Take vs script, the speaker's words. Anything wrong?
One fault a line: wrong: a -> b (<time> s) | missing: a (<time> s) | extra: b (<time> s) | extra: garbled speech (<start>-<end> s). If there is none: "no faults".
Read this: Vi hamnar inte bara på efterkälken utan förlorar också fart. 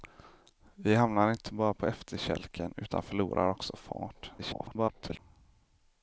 extra: garbled speech (4.4-5.2 s)